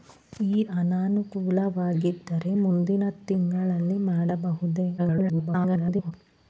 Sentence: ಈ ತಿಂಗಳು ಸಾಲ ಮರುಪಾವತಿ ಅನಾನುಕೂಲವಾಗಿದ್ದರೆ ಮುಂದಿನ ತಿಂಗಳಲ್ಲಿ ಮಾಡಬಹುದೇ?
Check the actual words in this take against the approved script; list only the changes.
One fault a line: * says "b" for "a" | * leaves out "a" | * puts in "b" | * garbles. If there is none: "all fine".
* leaves out "ತಿಂಗಳು ಸಾಲ ಮರುಪಾವತಿ"
* garbles